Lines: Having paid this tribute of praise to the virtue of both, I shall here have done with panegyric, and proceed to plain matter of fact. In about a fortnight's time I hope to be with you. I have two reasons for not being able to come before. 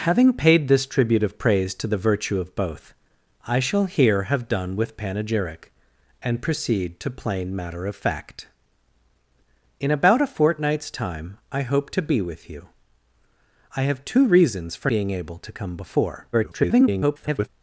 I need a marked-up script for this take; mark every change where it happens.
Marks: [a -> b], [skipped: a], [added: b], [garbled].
Having paid this tribute of praise to the virtue of both, I shall here have done with panegyric, and proceed to plain matter of fact. In about a fortnight's time I hope to be with you. I have two reasons for [skipped: not] being able to come before. [garbled]